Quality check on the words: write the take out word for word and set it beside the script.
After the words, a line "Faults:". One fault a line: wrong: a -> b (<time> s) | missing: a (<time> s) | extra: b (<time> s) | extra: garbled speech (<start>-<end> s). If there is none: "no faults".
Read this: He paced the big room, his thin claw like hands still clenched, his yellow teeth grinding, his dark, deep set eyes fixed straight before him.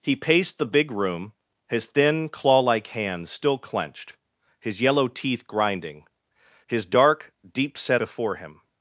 He paced the big room, his thin claw like hands still clenched, his yellow teeth grinding, his dark, deep set before him.
Faults:
missing: eyes fixed straight (8.0 s)